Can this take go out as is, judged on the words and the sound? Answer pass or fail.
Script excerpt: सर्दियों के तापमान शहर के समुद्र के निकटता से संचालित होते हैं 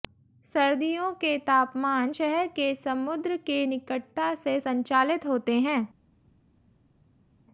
pass